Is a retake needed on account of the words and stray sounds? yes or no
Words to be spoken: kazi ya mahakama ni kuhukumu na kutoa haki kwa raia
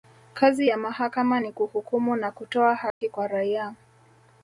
yes